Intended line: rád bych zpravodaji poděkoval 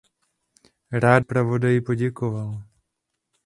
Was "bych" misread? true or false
true